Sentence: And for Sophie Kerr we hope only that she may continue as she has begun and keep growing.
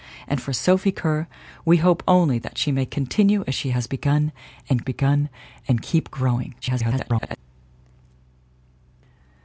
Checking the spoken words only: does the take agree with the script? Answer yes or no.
no